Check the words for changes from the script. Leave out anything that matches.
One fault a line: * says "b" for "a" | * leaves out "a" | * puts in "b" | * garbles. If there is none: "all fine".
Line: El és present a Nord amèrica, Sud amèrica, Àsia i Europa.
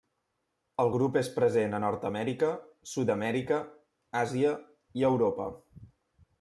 * puts in "grup"